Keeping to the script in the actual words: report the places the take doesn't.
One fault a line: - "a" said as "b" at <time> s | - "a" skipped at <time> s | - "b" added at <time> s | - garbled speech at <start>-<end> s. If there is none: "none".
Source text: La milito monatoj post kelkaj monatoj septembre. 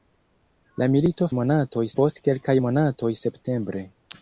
none